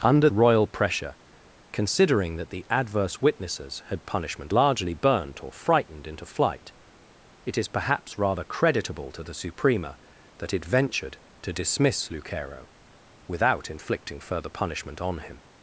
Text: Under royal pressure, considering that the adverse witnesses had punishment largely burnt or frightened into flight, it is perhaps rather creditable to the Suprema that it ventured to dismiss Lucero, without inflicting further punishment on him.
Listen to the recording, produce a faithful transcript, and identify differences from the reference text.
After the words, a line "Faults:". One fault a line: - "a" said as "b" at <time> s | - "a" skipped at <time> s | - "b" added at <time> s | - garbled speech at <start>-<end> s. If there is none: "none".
Under royal pressure, considering that the adverse witnesses had punishment largely burnt or frightened into flight, it is perhaps rather creditable to the Suprema that it ventured to dismiss Lucero, without inflicting further punishment on him.
Faults:
none